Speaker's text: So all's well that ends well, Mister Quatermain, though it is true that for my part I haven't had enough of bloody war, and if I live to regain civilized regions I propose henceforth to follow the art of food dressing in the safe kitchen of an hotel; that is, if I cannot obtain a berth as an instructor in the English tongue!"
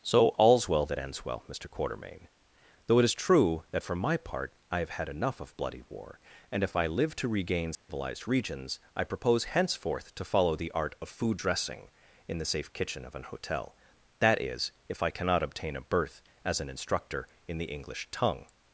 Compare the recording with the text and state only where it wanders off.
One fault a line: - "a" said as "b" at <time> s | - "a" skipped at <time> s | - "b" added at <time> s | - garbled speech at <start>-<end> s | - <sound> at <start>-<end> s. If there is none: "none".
- "haven't" said as "have" at 4.8 s
- dropout at 7.7-7.9 s